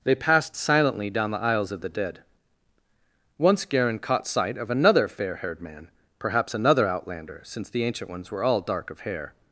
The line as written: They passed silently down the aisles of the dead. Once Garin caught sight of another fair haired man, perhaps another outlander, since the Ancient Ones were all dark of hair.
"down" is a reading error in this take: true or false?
false